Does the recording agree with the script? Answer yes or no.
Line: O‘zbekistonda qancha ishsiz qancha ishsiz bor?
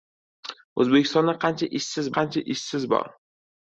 yes